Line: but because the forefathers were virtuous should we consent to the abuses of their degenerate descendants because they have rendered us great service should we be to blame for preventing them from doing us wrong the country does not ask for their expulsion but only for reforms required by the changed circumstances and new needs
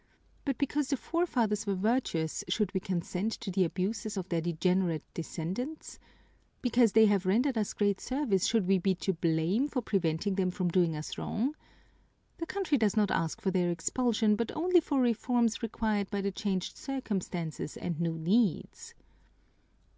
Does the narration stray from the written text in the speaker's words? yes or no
no